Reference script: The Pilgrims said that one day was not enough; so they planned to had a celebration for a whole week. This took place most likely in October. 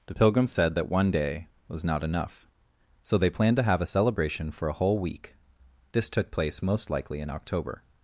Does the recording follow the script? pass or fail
fail